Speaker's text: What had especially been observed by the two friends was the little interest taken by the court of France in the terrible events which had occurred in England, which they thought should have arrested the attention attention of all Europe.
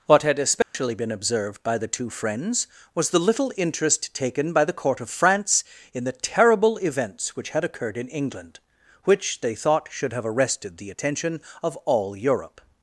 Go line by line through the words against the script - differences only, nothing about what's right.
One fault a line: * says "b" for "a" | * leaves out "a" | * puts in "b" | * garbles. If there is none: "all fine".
* leaves out "attention"